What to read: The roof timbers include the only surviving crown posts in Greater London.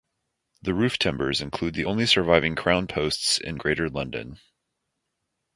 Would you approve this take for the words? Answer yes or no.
yes